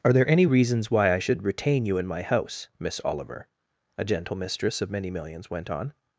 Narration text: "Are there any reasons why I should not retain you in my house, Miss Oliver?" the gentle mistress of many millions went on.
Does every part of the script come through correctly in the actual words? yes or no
no